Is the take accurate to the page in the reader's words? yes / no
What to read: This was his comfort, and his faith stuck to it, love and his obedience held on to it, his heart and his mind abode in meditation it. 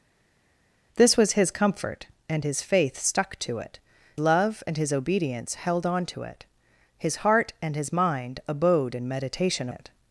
yes